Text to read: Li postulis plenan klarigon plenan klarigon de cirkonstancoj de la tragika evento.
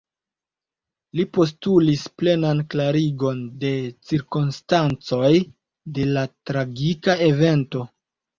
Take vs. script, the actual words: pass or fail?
fail